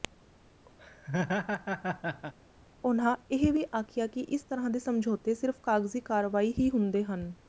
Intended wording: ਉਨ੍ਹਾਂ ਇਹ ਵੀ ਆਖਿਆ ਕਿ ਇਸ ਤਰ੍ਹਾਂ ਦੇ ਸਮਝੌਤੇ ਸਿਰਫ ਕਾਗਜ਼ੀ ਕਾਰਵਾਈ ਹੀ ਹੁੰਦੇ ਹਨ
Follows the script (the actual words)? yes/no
yes